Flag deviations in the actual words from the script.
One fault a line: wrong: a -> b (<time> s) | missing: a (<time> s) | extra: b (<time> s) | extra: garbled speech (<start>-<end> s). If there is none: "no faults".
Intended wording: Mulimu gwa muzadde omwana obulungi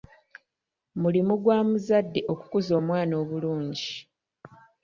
extra: okukuza (2.3 s)